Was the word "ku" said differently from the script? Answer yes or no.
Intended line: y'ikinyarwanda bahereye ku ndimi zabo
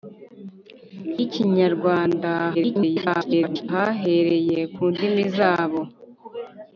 no